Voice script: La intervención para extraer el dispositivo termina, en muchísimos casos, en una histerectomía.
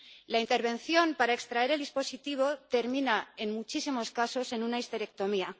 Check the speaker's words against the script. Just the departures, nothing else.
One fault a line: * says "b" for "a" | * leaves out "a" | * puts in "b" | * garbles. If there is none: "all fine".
all fine